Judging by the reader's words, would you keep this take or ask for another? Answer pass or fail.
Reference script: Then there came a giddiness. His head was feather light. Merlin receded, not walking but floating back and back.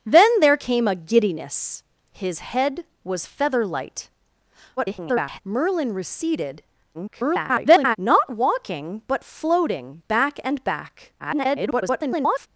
fail